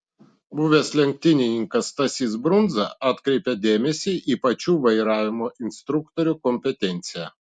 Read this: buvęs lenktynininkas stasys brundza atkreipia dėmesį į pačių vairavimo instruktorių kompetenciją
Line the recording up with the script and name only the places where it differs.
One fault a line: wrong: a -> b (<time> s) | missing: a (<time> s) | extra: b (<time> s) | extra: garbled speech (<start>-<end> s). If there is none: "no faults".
no faults